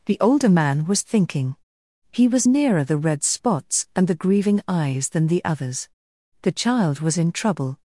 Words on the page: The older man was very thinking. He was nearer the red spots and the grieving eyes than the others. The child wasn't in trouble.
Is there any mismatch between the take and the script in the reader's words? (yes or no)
yes